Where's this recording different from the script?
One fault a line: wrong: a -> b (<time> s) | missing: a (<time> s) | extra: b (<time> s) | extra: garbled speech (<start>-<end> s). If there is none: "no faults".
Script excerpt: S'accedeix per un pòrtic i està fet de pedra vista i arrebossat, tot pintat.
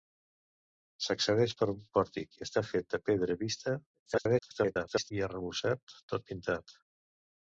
extra: garbled speech (4.1-5.1 s)